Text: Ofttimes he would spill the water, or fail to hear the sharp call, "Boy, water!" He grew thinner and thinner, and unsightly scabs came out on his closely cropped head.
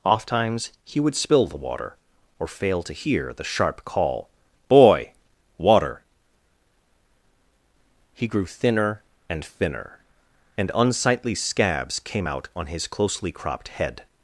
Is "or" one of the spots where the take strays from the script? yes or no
no